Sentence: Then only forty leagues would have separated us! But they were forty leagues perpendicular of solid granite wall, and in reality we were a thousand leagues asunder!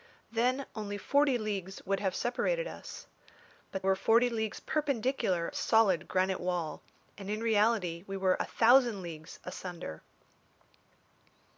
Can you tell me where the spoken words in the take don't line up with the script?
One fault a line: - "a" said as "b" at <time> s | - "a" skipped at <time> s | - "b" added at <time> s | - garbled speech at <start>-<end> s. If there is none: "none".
- "they" skipped at 3.8 s
- "of" skipped at 5.5 s